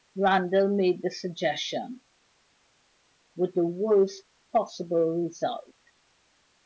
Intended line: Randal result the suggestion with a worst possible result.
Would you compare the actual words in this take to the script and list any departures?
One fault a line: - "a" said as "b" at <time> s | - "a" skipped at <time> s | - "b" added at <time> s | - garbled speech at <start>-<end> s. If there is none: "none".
- "result" said as "made" at 0.8 s
- "a" said as "the" at 3.5 s